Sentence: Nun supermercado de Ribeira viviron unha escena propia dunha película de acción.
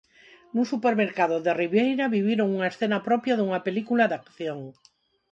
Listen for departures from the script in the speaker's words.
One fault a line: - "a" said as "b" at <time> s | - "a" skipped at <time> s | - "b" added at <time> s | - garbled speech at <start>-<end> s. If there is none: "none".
none